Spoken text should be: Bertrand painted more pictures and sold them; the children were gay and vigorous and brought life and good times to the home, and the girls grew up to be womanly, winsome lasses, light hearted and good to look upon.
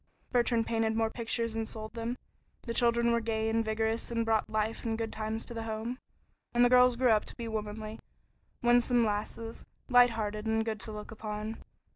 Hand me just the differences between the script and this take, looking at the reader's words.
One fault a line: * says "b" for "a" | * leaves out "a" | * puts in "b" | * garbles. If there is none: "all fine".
all fine